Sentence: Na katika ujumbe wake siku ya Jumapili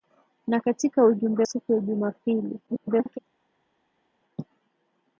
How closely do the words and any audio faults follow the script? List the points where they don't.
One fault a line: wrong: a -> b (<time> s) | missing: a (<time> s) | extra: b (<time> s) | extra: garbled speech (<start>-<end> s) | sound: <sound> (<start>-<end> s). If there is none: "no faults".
missing: wake (1.5 s)
extra: garbled speech (2.7-3.2 s)